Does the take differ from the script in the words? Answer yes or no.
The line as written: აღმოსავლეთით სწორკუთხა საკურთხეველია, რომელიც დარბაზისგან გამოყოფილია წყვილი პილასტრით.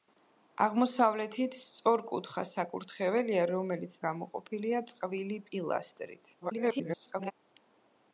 yes